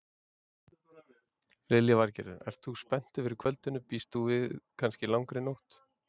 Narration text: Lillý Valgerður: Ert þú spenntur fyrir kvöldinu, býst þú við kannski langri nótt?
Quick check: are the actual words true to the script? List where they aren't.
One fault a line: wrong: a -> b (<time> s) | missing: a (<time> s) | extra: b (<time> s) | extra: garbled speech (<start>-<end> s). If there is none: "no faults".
no faults